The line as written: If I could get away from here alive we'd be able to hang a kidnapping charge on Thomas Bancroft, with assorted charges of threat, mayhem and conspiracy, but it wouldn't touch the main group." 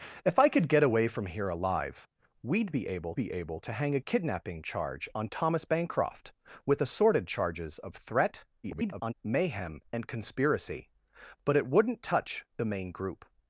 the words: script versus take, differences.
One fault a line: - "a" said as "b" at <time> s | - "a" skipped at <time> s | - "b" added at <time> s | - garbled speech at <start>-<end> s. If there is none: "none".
- "be able" added at 3.1 s
- garbled speech at 8.6-9.1 s